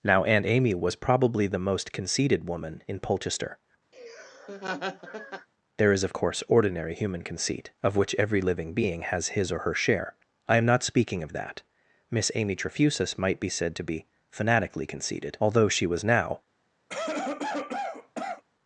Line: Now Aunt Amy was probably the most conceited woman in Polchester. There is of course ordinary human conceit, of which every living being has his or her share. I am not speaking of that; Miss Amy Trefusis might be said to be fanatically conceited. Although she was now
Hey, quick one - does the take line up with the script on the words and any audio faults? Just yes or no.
no